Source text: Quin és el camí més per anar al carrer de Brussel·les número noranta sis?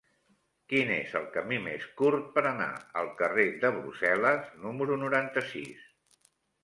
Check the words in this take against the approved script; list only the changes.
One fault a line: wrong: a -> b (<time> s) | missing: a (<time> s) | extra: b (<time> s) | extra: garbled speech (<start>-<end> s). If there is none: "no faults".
extra: curt (2.0 s)